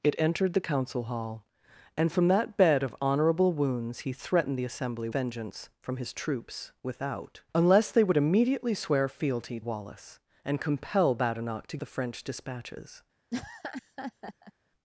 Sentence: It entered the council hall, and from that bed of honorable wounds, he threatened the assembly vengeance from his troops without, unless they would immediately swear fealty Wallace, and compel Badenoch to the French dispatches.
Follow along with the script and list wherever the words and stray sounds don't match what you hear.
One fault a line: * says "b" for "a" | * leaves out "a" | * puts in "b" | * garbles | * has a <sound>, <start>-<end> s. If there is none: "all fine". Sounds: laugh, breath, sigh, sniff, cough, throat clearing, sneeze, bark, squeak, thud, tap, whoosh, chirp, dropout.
* has a laugh, 13.3-14.5 s